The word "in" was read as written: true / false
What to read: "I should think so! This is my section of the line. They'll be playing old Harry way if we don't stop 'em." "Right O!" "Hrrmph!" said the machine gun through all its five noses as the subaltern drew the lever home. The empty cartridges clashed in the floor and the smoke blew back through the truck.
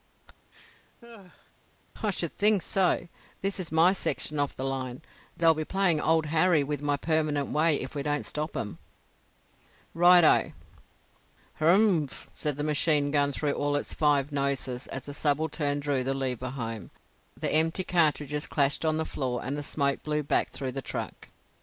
false